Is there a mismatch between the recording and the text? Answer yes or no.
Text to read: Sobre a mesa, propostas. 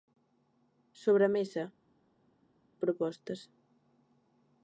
no